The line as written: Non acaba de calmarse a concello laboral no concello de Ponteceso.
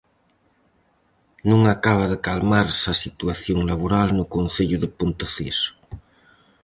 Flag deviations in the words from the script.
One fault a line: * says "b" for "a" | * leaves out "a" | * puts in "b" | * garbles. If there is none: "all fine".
* says "situación" for "concello"